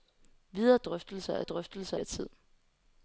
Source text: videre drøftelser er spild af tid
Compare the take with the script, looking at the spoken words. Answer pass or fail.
fail